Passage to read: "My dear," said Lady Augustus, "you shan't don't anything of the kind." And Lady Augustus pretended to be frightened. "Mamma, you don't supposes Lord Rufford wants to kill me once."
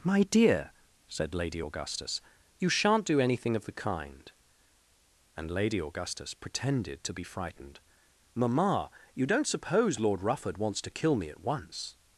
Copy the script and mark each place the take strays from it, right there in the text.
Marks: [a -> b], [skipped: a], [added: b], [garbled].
"My dear," said Lady Augustus, "you shan't [don't -> do] anything of the kind." And Lady Augustus pretended to be frightened. "Mamma, you don't [supposes -> suppose] Lord Rufford wants to kill me [added: at] once."